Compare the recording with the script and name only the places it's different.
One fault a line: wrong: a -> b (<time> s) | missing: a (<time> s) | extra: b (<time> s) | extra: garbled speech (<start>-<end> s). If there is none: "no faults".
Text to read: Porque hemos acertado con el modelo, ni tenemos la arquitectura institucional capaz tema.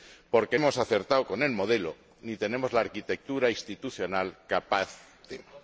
no faults